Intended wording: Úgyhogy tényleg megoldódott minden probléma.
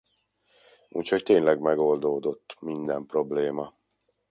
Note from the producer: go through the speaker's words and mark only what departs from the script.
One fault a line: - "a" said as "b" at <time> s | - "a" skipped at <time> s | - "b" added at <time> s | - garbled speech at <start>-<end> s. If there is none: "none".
none